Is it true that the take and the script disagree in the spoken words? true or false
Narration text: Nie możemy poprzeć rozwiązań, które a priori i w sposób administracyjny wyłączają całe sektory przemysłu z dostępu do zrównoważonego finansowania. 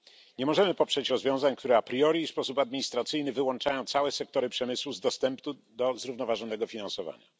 false